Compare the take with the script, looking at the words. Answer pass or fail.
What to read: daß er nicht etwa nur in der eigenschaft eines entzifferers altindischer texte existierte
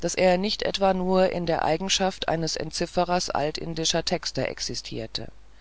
pass